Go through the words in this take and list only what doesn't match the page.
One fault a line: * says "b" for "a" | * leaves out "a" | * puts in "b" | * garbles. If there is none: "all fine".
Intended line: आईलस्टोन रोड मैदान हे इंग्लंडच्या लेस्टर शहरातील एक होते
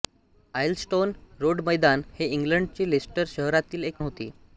all fine